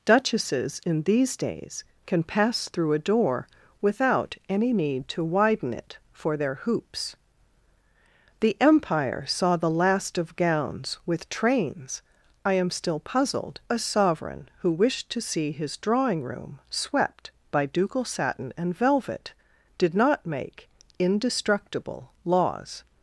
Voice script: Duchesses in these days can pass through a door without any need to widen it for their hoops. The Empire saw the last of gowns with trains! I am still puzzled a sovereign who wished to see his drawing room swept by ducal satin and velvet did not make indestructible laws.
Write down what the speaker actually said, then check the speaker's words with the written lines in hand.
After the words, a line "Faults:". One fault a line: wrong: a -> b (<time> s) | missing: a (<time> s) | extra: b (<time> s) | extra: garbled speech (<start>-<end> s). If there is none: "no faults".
Duchesses in these days can pass through a door without any need to widen it for their hoops. The Empire saw the last of gowns with trains! I am still puzzled a sovereign who wished to see his drawing room swept by ducal satin and velvet did not make indestructible laws.
Faults:
no faults